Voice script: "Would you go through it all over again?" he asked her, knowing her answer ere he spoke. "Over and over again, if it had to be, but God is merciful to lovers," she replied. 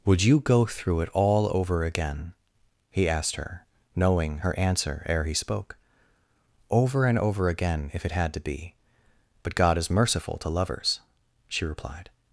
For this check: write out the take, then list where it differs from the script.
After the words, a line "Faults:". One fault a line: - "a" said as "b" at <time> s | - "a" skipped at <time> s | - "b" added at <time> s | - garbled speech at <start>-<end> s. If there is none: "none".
"Would you go through it all over again?" he asked her, knowing her answer ere he spoke. "Over and over again, if it had to be, but God is merciful to lovers," she replied.
Faults:
none